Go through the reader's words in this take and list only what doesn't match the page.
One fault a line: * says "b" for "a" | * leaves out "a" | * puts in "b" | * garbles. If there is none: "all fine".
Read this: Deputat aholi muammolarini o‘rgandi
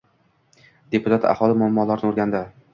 all fine